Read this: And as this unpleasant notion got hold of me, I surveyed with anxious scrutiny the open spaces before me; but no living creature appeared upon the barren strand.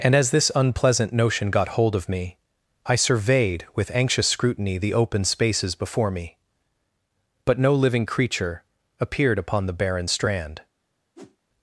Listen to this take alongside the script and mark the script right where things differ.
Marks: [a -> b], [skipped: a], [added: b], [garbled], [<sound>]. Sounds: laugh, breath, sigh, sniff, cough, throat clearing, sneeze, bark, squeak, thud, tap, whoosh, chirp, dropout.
And as this unpleasant notion got hold of me, I surveyed with anxious scrutiny the open spaces before me; but no living creature appeared upon the barren strand. [whoosh]